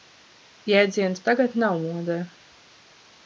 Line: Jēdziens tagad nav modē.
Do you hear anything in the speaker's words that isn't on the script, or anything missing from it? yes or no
no